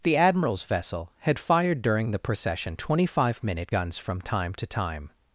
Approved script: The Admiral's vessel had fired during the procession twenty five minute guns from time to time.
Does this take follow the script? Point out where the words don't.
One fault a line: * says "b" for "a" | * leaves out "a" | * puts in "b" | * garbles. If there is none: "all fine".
all fine